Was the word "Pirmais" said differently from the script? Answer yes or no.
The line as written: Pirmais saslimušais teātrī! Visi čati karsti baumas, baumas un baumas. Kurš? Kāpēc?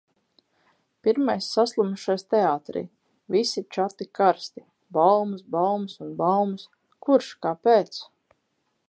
no